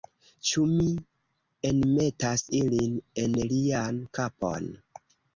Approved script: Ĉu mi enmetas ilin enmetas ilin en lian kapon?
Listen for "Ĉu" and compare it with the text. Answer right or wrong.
right